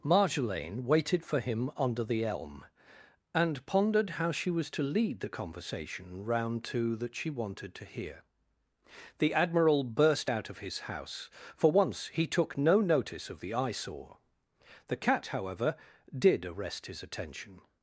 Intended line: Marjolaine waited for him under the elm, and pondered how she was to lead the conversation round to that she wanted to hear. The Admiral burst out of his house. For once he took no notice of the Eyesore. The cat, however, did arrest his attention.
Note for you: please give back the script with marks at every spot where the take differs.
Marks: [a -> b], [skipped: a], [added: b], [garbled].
Marjolaine waited for him under the elm, and pondered how she was to lead the conversation round to that she wanted to hear. The Admiral burst out of his house. For once he took no notice of the Eyesore. The cat, however, did arrest his attention.